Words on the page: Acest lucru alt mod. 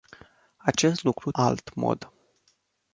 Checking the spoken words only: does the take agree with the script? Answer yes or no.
yes